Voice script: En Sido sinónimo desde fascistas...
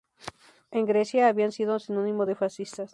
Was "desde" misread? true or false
true